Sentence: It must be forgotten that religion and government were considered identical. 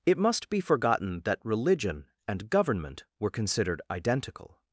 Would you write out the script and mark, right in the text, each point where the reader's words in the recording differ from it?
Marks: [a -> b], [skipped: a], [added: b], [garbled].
It must be forgotten that religion and government were considered identical.